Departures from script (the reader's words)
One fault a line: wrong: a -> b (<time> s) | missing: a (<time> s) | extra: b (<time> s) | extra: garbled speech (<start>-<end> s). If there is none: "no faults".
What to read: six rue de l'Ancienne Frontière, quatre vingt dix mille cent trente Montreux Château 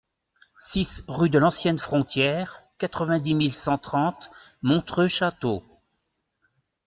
no faults